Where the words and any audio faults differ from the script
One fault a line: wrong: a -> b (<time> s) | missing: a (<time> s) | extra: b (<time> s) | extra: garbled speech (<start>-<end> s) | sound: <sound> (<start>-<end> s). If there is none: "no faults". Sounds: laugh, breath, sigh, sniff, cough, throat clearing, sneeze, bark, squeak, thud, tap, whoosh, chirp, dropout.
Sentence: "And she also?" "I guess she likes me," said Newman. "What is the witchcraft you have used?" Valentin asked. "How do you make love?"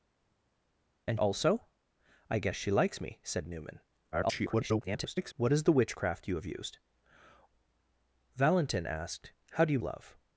missing: she (1.2 s)
extra: garbled speech (4.1-5.3 s)
missing: make (9.8 s)